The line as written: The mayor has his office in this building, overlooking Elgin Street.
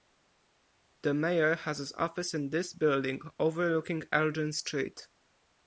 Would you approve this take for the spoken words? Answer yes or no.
yes